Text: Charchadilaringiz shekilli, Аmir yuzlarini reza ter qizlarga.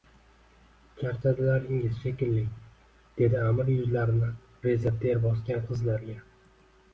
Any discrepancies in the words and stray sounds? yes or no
yes